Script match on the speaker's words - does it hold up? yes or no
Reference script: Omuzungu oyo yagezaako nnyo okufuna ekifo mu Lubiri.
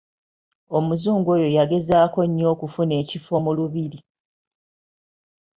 yes